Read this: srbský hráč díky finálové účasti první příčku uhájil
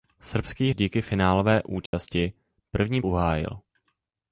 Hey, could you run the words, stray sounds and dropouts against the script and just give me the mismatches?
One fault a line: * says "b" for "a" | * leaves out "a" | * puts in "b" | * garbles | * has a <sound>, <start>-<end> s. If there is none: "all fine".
* leaves out "hráč"
* has a dropout, 1.9-1.9 s
* leaves out "příčku"